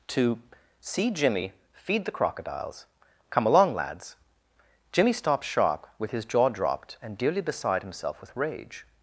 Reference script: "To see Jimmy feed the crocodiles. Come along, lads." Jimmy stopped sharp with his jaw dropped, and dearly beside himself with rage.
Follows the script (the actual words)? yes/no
yes